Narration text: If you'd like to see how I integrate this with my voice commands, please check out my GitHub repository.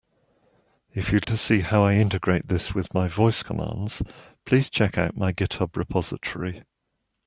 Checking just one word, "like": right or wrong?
wrong